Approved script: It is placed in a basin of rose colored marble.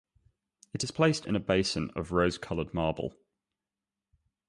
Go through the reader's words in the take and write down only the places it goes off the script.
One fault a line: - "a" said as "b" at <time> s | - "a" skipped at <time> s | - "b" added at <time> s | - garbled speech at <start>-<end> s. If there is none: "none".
none